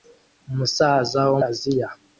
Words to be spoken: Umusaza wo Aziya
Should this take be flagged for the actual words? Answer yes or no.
no